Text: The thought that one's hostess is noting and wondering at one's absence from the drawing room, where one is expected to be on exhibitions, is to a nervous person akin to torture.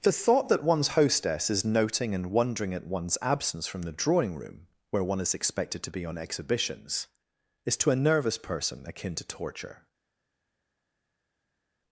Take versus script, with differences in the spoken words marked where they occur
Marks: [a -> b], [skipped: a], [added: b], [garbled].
The thought that one's hostess is noting and wondering at one's absence from the drawing room, where one is expected to be on exhibitions, is to a nervous person akin to torture.